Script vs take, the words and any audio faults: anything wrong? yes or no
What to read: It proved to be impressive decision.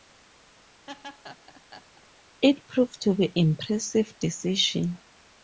yes